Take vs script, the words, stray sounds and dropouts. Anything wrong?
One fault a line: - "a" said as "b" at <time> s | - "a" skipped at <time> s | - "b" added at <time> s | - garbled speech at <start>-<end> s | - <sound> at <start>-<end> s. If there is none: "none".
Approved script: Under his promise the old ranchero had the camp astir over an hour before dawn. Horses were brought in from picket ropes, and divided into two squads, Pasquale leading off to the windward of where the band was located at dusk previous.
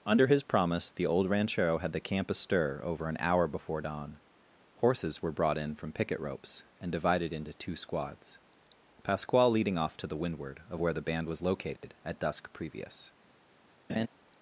- dropout at 11.8-11.8 s
- laugh at 13.9-14.1 s